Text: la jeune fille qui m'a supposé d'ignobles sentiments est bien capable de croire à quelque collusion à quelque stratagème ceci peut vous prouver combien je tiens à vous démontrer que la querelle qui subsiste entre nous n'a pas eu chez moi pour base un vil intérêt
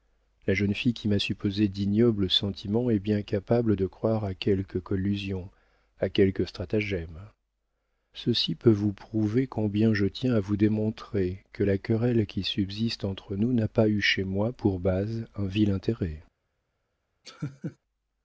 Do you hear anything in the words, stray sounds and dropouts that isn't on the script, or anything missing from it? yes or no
yes